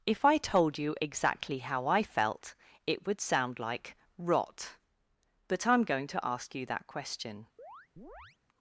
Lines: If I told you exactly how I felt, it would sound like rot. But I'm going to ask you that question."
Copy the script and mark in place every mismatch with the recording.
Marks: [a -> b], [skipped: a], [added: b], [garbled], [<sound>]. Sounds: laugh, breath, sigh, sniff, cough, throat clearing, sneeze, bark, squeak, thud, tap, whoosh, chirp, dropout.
If I told you exactly how I felt, it would sound like rot. But I'm going to ask you that question." [chirp]